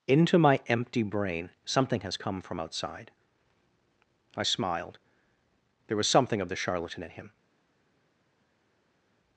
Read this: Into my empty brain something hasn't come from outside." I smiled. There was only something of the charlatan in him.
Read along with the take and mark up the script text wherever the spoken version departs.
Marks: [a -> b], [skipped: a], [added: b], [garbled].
Into my empty brain something [hasn't -> has] come from outside." I smiled. There was [skipped: only] something of the charlatan in him.